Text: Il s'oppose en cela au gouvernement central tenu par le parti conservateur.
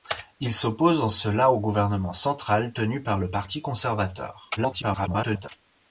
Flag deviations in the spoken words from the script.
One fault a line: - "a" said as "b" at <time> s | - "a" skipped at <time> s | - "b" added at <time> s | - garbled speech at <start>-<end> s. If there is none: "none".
- garbled speech at 4.6-5.5 s